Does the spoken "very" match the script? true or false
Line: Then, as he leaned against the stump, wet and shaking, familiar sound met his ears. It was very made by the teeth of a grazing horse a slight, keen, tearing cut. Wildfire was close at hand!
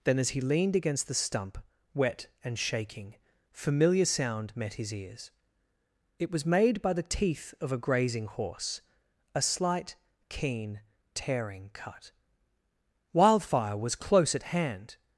false